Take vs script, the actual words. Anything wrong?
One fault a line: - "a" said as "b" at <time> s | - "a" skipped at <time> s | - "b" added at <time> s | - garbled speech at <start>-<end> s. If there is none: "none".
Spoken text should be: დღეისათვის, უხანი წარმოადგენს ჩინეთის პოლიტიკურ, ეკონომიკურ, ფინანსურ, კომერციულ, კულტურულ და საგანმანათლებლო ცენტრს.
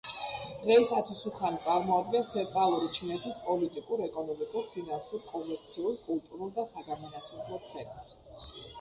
- "ცენტრალური" added at 2.3 s